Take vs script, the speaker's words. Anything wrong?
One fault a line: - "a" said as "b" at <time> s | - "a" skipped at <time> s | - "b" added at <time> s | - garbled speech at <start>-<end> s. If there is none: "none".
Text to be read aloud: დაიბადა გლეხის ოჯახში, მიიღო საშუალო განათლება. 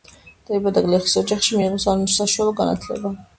none